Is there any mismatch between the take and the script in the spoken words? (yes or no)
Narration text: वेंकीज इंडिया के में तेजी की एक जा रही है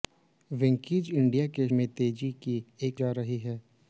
no